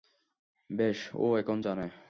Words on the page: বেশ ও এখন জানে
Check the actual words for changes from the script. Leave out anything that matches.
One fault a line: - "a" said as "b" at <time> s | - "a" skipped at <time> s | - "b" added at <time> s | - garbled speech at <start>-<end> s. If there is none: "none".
none